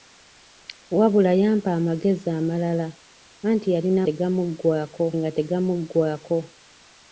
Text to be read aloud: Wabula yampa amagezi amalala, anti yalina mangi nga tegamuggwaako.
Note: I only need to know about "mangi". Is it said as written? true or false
false